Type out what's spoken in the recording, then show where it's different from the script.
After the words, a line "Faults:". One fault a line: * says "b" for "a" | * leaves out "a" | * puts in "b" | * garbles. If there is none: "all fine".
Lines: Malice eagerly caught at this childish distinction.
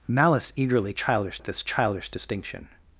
Malice eagerly childish at this childish distinction.
Faults:
* says "childish" for "caught"